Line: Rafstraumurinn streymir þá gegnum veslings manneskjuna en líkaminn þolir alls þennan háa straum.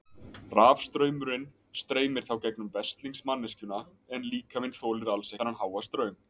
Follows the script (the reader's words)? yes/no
yes